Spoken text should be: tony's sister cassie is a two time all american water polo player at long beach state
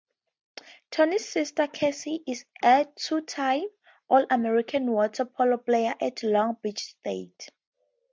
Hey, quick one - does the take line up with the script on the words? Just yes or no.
yes